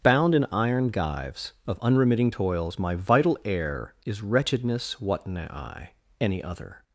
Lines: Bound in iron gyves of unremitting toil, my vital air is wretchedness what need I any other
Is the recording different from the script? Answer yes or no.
yes